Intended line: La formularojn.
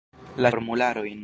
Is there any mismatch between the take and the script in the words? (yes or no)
no